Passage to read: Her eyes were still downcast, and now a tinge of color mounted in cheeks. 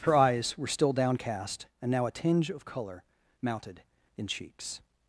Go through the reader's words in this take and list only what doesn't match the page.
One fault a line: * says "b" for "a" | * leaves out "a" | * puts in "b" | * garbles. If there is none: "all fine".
all fine